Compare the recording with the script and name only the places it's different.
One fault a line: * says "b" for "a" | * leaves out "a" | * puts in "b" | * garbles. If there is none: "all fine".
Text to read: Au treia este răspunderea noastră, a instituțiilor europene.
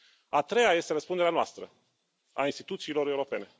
* says "A" for "Au"